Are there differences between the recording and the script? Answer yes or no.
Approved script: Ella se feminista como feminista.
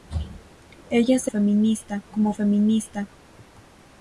no